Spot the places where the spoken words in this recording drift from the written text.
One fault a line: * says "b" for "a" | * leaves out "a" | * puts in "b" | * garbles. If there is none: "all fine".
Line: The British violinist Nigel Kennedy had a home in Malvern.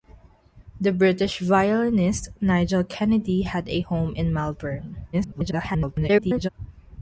* garbles